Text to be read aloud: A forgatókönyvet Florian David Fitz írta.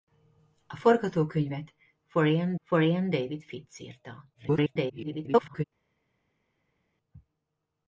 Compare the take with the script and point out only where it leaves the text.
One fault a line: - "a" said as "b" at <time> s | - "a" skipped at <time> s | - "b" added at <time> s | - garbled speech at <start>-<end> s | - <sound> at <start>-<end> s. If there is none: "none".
- "Florian" added at 2.6 s
- garbled speech at 4.3-5.6 s